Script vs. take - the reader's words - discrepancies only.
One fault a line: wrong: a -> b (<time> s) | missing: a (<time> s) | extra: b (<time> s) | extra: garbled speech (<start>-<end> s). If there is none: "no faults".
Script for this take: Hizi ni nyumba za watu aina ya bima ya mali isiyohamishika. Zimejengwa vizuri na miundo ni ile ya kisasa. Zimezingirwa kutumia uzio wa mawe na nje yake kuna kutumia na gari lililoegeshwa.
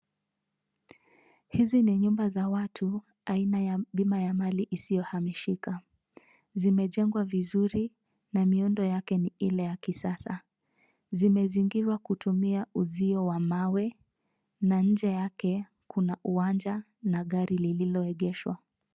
extra: yake (8.8 s)
wrong: kutumia -> uwanja (16.2 s)